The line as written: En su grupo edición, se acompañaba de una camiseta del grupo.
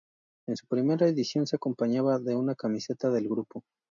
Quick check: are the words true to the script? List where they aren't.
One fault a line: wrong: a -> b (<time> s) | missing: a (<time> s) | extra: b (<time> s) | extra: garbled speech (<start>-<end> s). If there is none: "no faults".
wrong: grupo -> primera (0.7 s)